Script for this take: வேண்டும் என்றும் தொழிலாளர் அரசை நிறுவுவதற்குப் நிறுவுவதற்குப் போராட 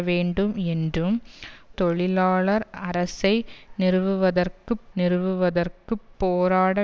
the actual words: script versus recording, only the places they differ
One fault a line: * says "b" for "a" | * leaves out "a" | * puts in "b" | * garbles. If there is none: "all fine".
all fine